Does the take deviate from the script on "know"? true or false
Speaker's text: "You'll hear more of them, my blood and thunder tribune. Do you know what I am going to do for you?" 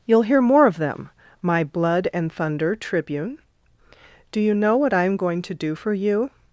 false